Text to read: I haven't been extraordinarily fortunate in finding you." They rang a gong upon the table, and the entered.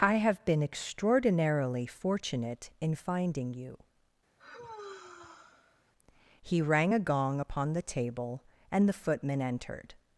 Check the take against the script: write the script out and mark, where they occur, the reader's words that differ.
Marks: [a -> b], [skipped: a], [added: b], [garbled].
I [haven't -> have] been extraordinarily fortunate in finding you." [They -> He] rang a gong upon the table, and the [added: footman] entered.